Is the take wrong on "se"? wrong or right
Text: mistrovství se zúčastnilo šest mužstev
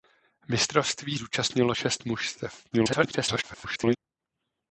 wrong